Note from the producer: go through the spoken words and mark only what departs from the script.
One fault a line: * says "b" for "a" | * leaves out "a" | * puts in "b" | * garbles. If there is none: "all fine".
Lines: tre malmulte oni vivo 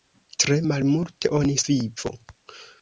all fine